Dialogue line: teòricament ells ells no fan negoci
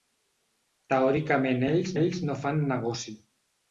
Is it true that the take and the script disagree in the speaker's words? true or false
false